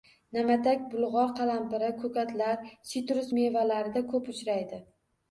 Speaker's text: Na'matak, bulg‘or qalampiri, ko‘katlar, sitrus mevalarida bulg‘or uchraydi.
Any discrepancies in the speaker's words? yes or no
yes